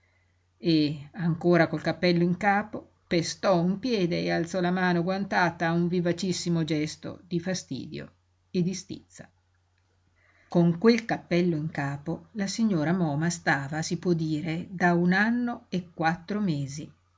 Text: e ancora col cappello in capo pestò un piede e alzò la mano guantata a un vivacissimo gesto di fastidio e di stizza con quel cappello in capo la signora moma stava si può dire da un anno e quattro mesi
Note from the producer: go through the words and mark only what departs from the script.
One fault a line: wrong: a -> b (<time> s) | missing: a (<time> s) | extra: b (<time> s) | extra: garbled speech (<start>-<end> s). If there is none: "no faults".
no faults